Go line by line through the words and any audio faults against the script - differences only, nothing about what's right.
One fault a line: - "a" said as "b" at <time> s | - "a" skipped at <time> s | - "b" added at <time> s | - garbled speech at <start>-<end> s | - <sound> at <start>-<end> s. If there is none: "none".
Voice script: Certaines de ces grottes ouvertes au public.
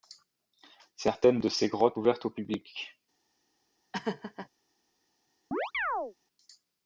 - laugh at 3.9-4.5 s
- chirp at 5.5-6.1 s